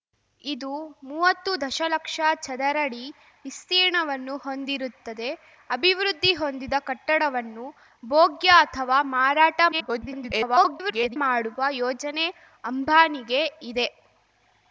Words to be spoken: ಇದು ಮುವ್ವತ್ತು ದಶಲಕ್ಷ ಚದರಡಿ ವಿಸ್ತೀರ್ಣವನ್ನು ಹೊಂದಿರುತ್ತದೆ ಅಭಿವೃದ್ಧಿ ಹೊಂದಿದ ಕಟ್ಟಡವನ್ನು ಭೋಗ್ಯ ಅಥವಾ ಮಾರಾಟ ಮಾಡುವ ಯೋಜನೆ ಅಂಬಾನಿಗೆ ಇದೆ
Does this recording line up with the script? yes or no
no